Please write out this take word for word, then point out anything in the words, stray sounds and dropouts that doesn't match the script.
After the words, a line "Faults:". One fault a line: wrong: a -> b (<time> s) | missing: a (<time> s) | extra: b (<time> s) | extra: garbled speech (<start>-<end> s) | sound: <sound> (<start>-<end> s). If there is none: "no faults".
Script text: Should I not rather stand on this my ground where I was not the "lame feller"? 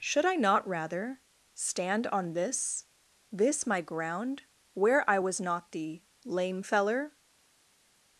Should I not rather stand on this this my ground where I was not the "lame feller"?
Faults:
extra: this (3.3 s)